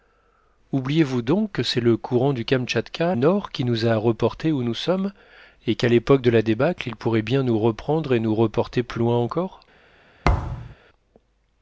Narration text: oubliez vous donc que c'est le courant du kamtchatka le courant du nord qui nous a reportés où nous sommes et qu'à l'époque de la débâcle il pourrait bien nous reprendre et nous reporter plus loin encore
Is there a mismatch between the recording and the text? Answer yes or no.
yes